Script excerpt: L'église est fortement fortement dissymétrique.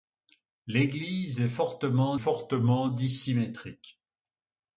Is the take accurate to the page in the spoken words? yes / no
yes